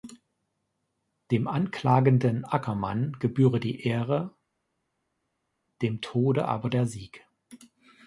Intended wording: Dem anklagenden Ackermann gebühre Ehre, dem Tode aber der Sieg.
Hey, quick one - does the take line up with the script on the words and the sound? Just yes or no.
no